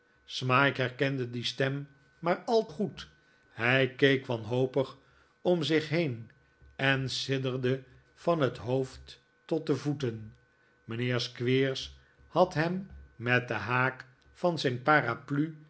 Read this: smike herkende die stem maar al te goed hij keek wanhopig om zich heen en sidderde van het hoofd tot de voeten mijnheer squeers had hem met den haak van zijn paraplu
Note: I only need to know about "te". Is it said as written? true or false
false